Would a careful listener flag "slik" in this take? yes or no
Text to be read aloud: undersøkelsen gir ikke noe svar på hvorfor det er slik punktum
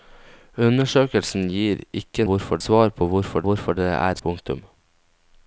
yes